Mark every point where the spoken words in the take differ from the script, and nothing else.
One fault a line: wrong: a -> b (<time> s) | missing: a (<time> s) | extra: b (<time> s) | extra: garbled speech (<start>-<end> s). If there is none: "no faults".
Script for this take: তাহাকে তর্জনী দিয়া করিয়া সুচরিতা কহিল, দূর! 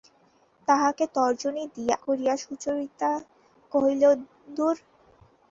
no faults